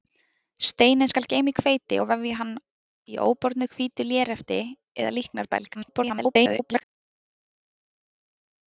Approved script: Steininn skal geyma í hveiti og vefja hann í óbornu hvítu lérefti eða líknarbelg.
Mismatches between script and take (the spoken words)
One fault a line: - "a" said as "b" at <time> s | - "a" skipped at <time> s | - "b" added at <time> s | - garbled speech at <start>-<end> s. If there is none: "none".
- garbled speech at 5.7-6.8 s